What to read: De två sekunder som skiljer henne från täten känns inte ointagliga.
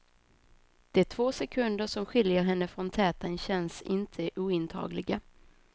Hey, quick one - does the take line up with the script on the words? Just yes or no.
yes